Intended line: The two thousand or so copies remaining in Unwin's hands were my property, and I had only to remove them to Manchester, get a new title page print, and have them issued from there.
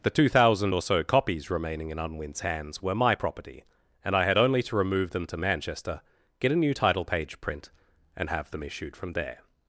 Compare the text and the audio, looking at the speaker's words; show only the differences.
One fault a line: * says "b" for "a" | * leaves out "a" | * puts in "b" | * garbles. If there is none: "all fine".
all fine